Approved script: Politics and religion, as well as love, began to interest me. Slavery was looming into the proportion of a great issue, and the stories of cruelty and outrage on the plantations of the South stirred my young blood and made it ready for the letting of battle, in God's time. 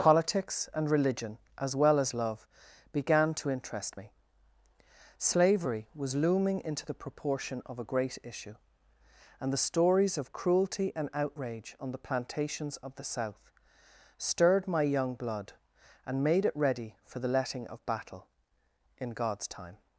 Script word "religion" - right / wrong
right